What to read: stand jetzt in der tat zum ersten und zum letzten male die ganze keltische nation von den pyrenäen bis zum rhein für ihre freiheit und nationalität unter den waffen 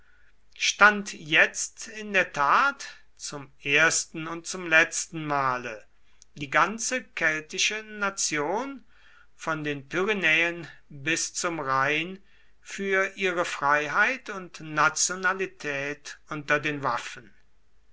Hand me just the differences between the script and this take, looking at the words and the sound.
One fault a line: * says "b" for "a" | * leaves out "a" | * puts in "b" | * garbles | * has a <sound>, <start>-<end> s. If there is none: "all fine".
all fine